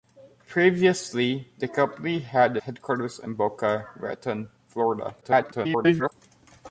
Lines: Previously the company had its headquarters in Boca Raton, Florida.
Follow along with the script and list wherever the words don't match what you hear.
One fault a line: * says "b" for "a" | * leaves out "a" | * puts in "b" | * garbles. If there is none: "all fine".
* leaves out "its"
* garbles